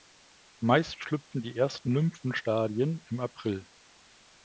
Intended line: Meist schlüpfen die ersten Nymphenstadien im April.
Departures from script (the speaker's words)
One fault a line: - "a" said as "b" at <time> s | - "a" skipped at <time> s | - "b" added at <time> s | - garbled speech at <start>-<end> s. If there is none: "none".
none